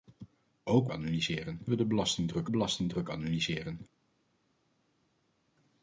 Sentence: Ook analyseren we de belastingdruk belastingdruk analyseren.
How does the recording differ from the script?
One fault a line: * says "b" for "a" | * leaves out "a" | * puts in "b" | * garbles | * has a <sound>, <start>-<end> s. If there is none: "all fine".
all fine